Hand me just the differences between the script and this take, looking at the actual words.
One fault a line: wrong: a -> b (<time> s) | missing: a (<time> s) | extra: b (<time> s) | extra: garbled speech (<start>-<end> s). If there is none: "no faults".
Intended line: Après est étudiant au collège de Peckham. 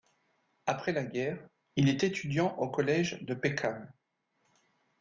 extra: la guerre il (0.9 s)